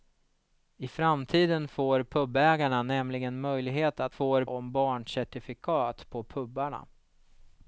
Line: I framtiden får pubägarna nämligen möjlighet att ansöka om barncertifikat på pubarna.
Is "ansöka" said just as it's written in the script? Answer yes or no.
no